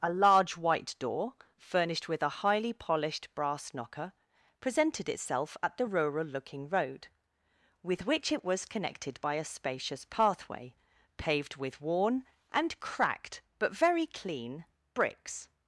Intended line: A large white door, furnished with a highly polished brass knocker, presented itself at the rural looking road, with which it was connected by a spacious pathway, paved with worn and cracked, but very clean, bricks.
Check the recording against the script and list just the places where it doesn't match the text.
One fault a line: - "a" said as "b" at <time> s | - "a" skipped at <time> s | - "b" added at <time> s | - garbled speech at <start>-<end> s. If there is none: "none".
none